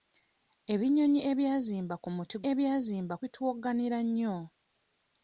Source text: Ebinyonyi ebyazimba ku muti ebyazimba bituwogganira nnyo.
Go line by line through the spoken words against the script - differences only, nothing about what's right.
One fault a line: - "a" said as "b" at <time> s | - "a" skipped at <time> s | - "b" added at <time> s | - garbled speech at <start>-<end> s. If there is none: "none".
none